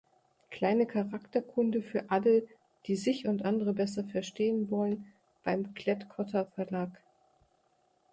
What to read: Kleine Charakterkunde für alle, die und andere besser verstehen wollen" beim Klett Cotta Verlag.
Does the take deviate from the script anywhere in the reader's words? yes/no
yes